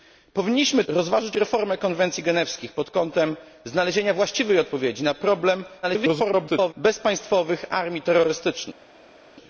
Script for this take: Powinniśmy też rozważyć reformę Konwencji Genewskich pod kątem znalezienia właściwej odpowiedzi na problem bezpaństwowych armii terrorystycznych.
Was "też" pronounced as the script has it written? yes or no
no